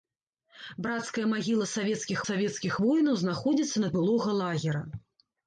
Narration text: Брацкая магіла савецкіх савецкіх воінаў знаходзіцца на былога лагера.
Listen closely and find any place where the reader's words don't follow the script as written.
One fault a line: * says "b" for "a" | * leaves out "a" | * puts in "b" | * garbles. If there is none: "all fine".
all fine